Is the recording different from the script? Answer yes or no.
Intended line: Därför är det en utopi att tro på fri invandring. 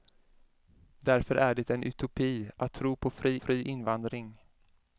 yes